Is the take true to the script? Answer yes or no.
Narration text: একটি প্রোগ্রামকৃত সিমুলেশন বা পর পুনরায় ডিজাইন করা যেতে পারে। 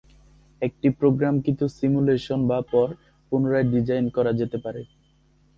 yes